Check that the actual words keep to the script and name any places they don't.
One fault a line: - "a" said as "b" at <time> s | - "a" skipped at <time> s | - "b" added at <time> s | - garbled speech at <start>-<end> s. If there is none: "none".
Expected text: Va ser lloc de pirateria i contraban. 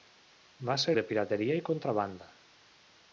- "lloc" skipped at 0.9 s